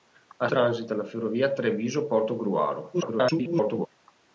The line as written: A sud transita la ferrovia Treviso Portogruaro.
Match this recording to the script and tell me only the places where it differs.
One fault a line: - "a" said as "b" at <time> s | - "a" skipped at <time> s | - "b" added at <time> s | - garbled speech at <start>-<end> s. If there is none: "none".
- "sud" skipped at 0.5 s
- garbled speech at 2.9-3.9 s